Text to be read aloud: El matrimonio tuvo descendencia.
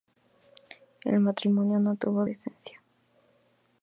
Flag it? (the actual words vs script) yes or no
yes